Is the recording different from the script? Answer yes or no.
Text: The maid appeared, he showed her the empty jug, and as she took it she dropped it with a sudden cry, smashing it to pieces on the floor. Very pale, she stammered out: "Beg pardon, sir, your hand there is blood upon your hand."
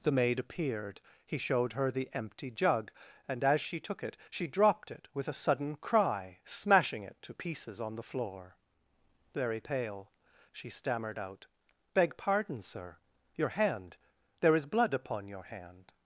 no